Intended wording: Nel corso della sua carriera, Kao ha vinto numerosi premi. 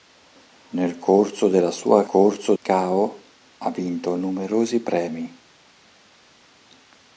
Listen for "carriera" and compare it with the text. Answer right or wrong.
wrong